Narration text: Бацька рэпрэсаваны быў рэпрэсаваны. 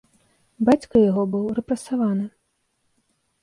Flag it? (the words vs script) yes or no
yes